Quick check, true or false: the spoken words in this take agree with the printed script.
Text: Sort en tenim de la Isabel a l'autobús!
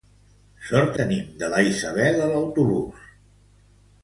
false